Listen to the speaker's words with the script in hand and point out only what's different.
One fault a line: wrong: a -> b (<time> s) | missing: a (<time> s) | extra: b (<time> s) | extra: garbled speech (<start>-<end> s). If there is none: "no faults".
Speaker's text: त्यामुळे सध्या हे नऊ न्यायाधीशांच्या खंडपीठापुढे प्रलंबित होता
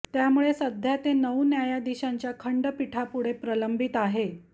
wrong: हे -> ते (1.0 s)
wrong: होता -> आहे (4.0 s)